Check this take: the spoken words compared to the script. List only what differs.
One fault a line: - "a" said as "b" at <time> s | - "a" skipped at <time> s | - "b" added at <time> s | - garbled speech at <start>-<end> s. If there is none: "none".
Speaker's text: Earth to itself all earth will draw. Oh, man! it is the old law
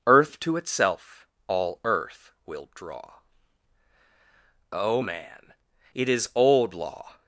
- "the" skipped at 6.3 s